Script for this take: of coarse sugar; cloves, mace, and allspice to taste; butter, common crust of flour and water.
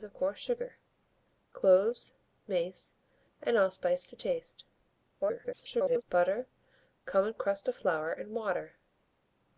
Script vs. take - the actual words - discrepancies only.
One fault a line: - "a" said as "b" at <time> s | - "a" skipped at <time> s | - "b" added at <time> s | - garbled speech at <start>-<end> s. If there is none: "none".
- garbled speech at 5.2-6.0 s